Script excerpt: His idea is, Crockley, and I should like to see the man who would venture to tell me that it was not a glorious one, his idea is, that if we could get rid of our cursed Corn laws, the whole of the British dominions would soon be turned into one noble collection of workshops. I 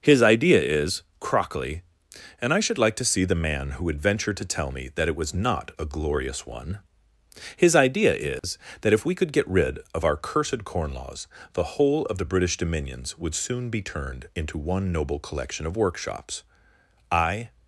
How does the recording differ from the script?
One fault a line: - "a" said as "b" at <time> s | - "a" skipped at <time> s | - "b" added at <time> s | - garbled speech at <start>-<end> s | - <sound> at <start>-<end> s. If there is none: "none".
- dropout at 8.4-8.4 s